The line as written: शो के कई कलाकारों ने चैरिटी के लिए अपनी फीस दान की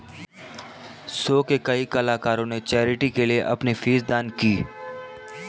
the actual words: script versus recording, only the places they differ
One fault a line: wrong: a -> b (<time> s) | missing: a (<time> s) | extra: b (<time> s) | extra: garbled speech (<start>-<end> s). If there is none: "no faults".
no faults